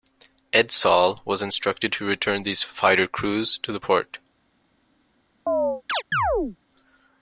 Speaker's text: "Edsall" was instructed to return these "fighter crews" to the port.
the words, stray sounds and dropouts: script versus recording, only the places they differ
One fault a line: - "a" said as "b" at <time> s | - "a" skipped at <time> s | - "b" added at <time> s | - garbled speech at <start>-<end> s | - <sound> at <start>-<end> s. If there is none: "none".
- chirp at 5.5-6.6 s